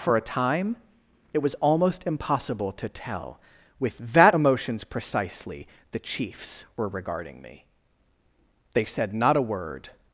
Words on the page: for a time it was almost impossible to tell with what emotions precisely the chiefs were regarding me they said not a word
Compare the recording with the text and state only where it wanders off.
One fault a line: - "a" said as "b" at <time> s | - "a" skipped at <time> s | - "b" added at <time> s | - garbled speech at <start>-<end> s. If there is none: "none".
- "what" said as "that" at 4.0 s